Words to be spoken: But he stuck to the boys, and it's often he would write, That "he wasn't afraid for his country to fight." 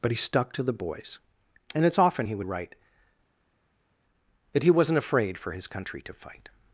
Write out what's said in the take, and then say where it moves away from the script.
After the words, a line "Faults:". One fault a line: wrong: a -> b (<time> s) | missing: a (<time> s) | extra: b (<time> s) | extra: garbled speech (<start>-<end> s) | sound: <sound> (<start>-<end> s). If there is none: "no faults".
But he stuck to the boys, and it's often he would write, That "he wasn't afraid for his country to fight."
Faults:
no faults